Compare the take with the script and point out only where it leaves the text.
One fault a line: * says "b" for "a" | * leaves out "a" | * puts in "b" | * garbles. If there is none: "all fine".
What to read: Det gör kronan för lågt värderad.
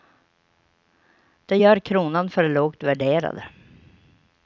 all fine